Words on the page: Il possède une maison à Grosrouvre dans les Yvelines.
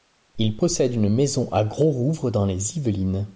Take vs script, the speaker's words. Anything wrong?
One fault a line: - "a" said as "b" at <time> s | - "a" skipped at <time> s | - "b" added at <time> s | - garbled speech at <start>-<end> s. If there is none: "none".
none